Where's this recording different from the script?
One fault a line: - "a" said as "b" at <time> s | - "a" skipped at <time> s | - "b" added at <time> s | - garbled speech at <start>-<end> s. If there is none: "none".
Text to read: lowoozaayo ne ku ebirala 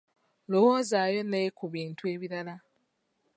- "bintu" added at 1.7 s